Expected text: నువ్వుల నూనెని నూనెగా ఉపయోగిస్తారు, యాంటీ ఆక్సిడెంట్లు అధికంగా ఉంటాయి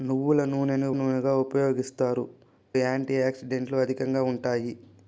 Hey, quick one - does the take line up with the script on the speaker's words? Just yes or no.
yes